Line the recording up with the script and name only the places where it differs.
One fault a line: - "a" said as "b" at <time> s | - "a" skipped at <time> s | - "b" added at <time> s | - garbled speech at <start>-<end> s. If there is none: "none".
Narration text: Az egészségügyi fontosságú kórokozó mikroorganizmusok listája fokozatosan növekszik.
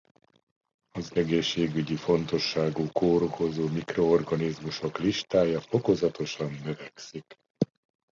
none